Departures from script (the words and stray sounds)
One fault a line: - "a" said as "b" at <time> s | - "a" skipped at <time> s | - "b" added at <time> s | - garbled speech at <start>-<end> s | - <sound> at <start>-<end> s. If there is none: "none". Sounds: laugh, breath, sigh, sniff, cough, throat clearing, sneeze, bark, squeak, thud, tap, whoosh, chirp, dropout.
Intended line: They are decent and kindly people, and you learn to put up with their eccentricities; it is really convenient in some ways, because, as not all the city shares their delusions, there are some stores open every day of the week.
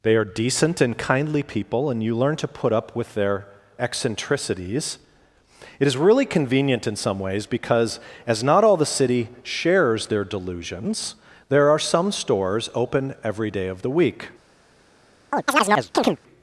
- chirp at 15.3-16.2 s